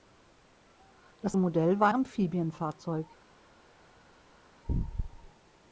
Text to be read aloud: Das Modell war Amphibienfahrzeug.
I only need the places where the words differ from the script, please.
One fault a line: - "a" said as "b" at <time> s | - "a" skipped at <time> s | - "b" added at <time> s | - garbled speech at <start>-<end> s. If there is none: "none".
none